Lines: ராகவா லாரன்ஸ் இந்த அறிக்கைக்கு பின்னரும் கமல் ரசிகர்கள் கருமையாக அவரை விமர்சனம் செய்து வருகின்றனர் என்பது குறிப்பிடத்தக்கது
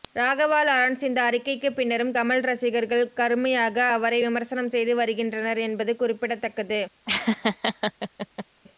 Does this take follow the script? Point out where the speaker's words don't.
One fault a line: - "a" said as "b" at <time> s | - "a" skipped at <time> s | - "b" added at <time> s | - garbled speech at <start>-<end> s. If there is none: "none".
none